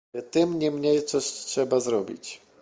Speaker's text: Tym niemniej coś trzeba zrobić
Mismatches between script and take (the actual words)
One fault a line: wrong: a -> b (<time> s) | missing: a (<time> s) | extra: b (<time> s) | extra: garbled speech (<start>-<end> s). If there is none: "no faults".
no faults